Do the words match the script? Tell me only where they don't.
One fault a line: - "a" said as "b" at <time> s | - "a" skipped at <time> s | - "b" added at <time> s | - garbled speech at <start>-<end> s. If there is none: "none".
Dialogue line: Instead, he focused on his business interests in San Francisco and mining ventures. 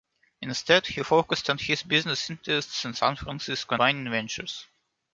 - "and" skipped at 3.8 s